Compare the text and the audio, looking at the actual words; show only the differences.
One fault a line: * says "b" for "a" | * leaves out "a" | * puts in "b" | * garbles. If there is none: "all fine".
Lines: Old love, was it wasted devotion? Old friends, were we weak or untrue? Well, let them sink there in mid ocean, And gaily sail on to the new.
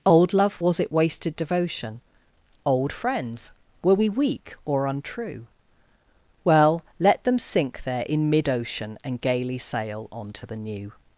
all fine